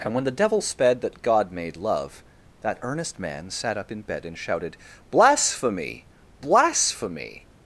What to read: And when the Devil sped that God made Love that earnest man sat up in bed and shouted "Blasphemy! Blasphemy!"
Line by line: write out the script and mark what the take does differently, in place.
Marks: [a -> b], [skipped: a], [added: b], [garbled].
And when the Devil sped that God made Love that earnest man sat up in bed and shouted "Blasphemy! Blasphemy!"